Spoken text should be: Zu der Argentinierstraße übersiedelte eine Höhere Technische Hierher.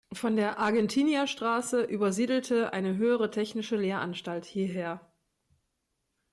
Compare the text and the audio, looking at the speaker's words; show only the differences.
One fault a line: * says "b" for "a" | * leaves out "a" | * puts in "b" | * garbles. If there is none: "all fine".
* says "Von" for "Zu"
* puts in "Lehranstalt"